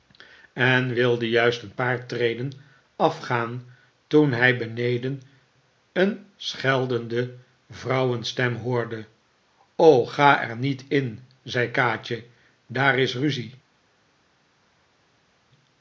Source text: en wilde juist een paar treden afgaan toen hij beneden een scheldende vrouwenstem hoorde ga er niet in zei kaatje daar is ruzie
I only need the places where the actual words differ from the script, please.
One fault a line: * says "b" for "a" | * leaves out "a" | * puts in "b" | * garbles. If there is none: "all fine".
all fine